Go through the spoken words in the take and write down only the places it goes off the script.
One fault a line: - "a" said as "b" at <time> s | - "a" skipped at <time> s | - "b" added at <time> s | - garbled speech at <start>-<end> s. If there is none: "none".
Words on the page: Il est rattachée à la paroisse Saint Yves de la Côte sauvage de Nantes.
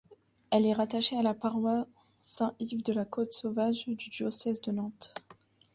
- "Il" said as "Elle" at 0.5 s
- "du diocèse" added at 3.9 s